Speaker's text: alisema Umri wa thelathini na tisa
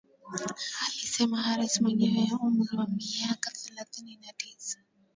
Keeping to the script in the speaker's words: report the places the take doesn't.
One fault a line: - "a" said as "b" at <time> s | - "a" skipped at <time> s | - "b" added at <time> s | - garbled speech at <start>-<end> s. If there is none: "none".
- "Harris mwenye" added at 1.4 s
- "miaka" added at 2.9 s